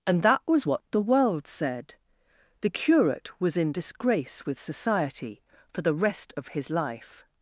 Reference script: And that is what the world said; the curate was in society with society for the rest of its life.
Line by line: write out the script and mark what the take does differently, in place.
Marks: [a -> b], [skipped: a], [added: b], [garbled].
And that [is -> was] what the world said; the curate was in [society -> disgrace] with society for the rest of [its -> his] life.